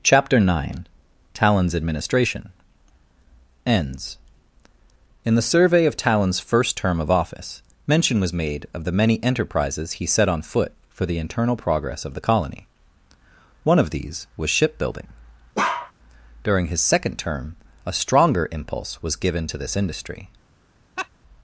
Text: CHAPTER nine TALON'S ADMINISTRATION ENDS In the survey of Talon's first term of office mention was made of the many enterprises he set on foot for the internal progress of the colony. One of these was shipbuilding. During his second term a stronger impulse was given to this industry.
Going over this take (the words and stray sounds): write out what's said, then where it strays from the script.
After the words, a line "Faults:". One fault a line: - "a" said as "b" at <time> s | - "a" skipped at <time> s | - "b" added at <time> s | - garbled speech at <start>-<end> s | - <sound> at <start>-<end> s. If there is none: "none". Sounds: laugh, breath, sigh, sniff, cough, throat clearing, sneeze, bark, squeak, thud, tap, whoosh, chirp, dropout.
CHAPTER nine TALON'S ADMINISTRATION ENDS In the survey of Talon's first term of office mention was made of the many enterprises he set on foot for the internal progress of the colony. One of these was shipbuilding. During his second term a stronger impulse was given to this industry.
Faults:
- bark at 15.5-15.9 s
- laugh at 21.0-21.1 s